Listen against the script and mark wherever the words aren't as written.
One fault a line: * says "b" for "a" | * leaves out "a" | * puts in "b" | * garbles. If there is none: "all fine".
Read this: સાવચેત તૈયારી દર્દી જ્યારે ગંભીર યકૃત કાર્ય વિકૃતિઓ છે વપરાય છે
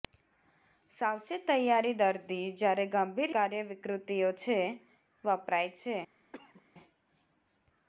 * leaves out "યકૃત"